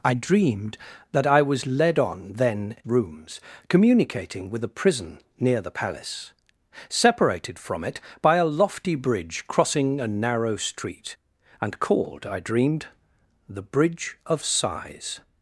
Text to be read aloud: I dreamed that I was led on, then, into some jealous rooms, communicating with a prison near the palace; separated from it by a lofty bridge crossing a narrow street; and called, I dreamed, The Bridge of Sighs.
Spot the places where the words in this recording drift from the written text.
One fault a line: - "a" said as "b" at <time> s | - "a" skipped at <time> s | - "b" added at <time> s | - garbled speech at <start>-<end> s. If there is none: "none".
- "into some jealous" skipped at 2.8 s